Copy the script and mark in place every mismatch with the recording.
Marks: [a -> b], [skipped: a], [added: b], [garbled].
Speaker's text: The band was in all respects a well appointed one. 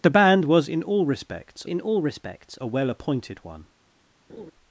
The band was in all respects [added: in all respects] a well appointed one.